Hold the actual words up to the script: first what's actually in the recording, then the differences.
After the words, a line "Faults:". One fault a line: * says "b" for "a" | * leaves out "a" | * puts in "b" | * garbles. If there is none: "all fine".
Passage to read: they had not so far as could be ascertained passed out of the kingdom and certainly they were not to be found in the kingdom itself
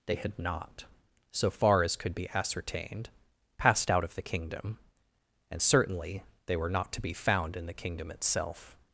they had not so far as could be ascertained passed out of the kingdom and certainly they were not to be found in the kingdom itself
Faults:
all fine